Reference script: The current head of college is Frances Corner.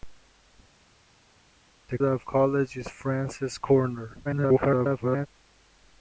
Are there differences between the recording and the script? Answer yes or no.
yes